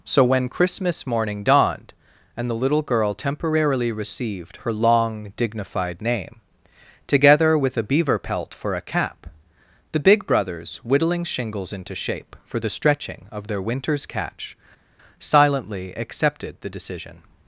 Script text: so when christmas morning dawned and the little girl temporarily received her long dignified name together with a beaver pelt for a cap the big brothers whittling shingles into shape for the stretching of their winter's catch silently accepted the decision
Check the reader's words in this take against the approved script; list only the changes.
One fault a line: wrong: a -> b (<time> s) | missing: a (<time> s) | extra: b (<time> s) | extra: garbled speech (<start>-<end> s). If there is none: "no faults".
no faults